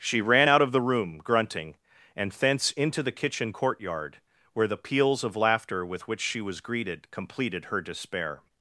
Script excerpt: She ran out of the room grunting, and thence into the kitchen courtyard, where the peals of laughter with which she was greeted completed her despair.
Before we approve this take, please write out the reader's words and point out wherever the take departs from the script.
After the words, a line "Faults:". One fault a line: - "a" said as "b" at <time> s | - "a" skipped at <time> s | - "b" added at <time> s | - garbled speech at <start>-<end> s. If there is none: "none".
She ran out of the room grunting, and thence into the kitchen courtyard, where the peals of laughter with which she was greeted completed her despair.
Faults:
none